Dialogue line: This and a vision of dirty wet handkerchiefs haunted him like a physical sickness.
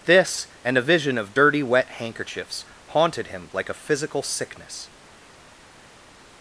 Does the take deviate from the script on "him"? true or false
false